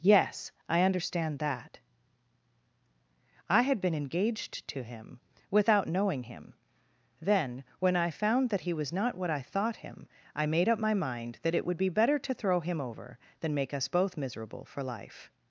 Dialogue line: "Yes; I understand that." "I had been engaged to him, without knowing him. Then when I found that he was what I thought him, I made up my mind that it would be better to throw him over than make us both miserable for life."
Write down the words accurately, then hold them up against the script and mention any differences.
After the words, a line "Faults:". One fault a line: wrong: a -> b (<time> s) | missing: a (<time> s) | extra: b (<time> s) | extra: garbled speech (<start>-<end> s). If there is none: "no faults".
"Yes; I understand that." "I had been engaged to him, without knowing him. Then when I found that he was not what I thought him, I made up my mind that it would be better to throw him over than make us both miserable for life."
Faults:
extra: not (8.9 s)